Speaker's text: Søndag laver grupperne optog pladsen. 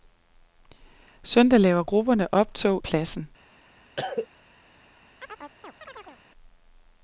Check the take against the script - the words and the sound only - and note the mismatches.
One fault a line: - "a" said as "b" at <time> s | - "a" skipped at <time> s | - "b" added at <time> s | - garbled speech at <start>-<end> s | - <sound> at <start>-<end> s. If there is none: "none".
- cough at 4.0-4.3 s
- chirp at 5.2-6.2 s